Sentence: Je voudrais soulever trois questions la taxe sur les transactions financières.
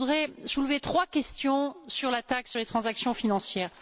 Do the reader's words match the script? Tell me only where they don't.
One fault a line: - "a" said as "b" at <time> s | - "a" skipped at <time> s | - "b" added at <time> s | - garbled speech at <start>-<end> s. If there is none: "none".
- "sur" added at 1.9 s